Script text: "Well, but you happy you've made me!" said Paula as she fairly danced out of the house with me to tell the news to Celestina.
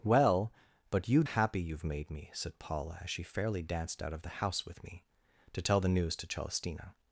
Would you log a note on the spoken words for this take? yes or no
no